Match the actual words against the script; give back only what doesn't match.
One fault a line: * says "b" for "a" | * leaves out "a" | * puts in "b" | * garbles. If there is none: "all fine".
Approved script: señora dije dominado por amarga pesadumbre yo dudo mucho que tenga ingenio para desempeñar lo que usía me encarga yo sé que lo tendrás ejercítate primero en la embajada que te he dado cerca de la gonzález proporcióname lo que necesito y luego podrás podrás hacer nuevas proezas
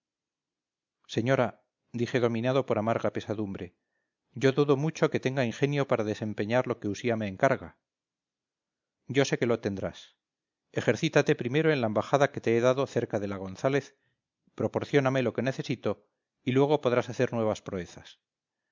* leaves out "podrás"